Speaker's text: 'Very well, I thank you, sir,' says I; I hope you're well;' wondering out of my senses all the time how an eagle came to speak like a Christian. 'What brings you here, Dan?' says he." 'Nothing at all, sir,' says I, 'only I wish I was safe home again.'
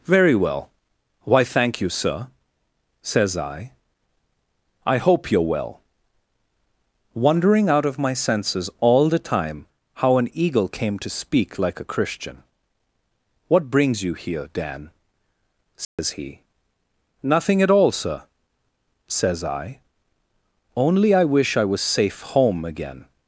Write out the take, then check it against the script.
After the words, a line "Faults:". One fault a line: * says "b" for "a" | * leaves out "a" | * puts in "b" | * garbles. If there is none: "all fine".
'Very well, why thank you, sir,' says I; I hope you're well;' wondering out of my senses all the time how an eagle came to speak like a Christian. 'What brings you here, Dan?' says he." 'Nothing at all, sir,' says I, 'only I wish I was safe home again.'
Faults:
* says "why" for "I"